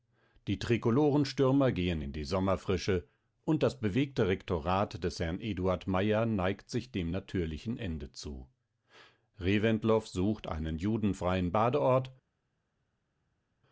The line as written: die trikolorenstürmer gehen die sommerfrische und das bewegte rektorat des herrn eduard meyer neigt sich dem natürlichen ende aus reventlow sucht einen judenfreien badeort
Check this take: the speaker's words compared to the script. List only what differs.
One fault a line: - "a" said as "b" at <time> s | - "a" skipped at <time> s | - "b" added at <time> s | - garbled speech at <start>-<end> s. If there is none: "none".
- "in" added at 2.0 s
- "aus" said as "zu" at 8.1 s